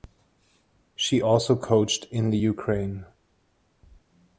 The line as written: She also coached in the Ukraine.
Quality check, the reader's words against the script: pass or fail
pass